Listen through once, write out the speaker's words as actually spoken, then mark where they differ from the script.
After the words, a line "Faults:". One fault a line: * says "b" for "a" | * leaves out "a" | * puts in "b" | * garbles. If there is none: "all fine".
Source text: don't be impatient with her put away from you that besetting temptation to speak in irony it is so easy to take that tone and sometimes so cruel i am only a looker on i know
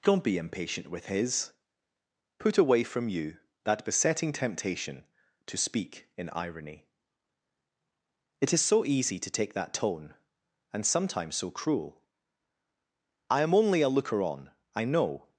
don't be impatient with his put away from you that besetting temptation to speak in irony it is so easy to take that tone and sometimes so cruel i am only a looker on i know
Faults:
* says "his" for "her"